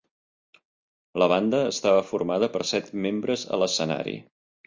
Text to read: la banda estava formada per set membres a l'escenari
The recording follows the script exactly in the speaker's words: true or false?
true